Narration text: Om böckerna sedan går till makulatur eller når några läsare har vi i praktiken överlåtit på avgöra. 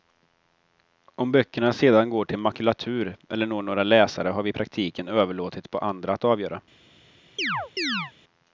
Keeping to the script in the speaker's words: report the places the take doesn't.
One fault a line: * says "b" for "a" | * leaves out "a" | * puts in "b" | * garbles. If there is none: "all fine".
* puts in "andra att"